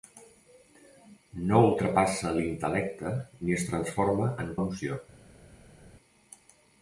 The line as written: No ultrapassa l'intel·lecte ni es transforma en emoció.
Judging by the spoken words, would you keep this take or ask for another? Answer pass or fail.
pass